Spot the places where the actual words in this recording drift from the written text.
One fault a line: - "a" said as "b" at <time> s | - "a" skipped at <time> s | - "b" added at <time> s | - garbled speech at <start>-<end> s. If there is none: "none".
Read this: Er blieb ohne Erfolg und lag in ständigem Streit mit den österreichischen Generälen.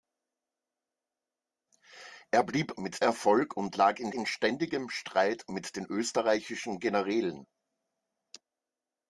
- "ohne" said as "mit" at 2.8 s
- "in" added at 4.1 s